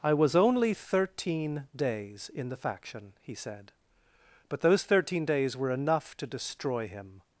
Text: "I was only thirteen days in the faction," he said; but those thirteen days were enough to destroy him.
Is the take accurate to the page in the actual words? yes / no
yes